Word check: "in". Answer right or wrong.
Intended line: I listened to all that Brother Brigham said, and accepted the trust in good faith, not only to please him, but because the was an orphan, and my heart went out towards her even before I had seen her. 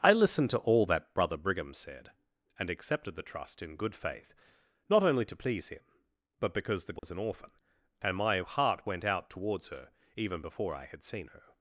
right